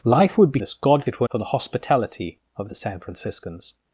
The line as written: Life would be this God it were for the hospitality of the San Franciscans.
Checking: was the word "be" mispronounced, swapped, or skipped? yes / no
no